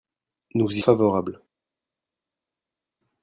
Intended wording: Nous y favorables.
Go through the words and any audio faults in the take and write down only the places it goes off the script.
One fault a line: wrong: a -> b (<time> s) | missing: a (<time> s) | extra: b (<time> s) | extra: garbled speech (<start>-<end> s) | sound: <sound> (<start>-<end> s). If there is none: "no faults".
no faults